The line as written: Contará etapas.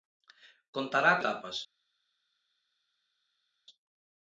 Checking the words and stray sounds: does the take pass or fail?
pass